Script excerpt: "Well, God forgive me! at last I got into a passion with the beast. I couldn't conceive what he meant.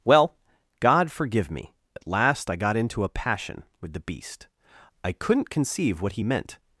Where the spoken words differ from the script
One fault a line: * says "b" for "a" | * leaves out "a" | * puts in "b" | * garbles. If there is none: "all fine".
all fine